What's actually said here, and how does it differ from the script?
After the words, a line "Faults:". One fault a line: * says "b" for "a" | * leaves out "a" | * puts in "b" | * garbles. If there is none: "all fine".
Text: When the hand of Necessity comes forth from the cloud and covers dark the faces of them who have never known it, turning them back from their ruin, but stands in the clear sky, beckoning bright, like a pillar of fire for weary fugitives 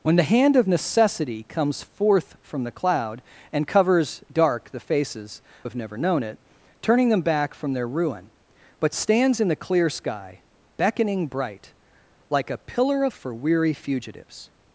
When the hand of Necessity comes forth from the cloud and covers dark the faces have never known it, turning them back from their ruin, but stands in the clear sky, beckoning bright, like a pillar of for weary fugitives
Faults:
* leaves out "of them who"
* leaves out "fire"